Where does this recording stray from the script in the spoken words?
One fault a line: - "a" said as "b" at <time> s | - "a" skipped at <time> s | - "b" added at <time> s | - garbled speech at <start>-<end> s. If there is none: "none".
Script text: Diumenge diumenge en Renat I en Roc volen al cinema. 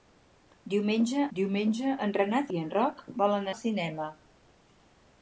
none